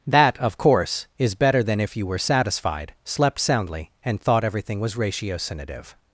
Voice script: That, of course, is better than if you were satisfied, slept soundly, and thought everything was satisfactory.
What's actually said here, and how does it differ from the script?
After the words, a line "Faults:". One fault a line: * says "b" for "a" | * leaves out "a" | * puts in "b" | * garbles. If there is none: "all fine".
That, of course, is better than if you were satisfied, slept soundly, and thought everything was ratiocinative.
Faults:
* says "ratiocinative" for "satisfactory"